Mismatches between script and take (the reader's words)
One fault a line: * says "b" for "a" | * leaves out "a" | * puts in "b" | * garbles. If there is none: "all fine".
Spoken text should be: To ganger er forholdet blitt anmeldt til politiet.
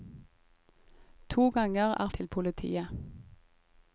* leaves out "forholdet blitt anmeldt"